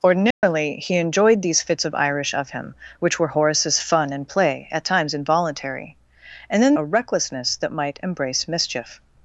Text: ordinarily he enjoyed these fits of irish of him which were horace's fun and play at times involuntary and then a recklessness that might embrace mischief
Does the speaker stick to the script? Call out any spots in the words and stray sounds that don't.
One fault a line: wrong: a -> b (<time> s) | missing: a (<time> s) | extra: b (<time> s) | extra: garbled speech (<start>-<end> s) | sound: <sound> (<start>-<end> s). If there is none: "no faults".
sound: dropout (0.3-0.4 s)